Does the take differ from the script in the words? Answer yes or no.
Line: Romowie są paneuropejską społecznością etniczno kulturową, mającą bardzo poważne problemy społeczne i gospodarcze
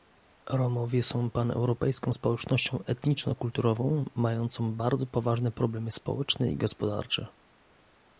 no